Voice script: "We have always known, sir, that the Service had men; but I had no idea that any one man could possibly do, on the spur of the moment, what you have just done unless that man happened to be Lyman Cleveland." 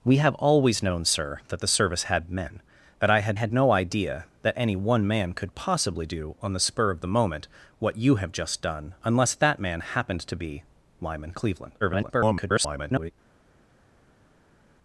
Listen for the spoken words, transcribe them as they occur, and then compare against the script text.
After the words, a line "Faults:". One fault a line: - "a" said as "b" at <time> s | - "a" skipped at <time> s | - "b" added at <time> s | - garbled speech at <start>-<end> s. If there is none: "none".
"We have always known, sir, that the Service had men; but I had had no idea that any one man could possibly do, on the spur of the moment, what you have just done unless that man happened to be Lyman Cleveland." [garbled]
Faults:
- "had" added at 3.3 s
- garbled speech at 11.8-13.1 s